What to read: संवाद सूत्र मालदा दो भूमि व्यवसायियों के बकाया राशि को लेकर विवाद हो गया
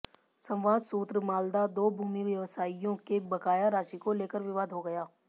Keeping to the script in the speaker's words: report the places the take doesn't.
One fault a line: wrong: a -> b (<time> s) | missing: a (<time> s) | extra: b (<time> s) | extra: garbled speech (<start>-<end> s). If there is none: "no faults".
no faults